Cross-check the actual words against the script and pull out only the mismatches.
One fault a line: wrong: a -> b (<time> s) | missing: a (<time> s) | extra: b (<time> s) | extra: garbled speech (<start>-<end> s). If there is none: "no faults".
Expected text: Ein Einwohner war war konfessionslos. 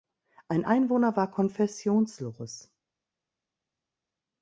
missing: war (1.3 s)